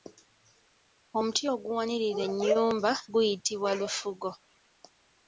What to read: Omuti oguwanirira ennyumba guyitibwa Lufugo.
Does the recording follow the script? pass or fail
pass